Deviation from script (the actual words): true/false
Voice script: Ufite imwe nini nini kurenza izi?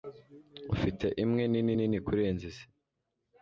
false